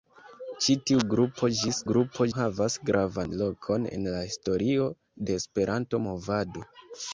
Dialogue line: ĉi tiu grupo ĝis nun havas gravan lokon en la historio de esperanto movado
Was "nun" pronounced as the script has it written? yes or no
no